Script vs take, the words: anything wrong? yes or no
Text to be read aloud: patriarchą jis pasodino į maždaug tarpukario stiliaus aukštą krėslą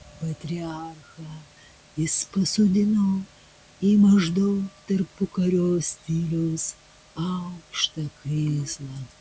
no